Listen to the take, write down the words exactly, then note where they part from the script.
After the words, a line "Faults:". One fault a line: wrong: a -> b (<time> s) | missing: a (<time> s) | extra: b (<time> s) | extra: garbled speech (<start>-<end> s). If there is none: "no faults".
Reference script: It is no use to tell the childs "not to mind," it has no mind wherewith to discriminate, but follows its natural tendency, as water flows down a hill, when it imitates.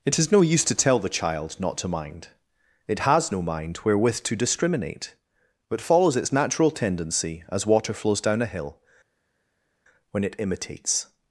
It is no use to tell the child "not to mind," it has no mind wherewith to discriminate, but follows its natural tendency, as water flows down a hill, when it imitates.
Faults:
wrong: childs -> child (1.1 s)